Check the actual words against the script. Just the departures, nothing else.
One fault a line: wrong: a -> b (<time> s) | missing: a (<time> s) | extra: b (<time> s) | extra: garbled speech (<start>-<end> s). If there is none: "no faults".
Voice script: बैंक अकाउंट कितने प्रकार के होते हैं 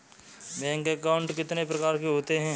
no faults